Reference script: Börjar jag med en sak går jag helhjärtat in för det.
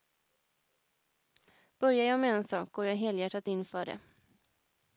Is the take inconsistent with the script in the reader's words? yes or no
no